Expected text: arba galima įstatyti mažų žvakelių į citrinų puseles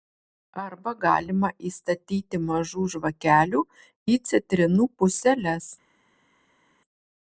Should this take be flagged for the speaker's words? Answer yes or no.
no